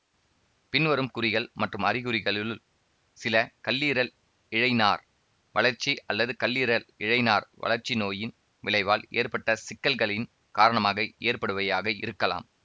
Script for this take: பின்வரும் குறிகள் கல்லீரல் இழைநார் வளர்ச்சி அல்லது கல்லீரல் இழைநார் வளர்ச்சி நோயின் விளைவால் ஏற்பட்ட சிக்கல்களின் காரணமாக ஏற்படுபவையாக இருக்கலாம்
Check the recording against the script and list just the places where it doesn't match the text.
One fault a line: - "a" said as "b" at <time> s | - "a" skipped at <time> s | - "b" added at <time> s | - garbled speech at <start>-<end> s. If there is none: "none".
- "மற்றும் அறிகுறிகளுள் சில" added at 1.6 s